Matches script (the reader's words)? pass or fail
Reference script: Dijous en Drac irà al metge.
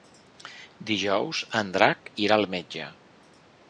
pass